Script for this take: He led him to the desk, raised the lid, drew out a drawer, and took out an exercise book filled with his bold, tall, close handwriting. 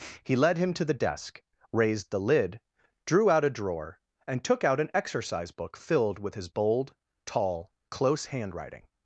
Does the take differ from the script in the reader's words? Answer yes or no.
no